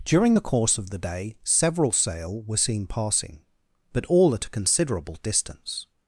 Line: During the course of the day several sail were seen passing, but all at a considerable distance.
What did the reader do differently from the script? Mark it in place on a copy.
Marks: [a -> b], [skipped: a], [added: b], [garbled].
During the course of the day several sail were seen passing, but all at a considerable distance.